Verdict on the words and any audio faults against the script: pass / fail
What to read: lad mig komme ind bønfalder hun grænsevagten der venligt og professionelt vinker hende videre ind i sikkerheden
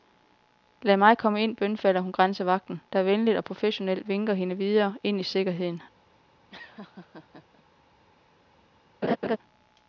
fail